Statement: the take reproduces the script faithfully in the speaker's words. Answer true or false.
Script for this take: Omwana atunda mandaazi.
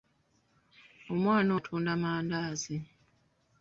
true